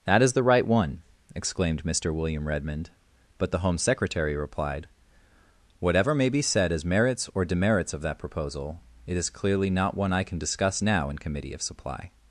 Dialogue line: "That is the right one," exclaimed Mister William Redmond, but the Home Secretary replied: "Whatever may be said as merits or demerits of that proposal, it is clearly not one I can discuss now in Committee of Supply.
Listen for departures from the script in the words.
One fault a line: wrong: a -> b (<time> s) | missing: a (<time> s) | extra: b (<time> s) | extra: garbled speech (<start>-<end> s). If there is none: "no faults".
no faults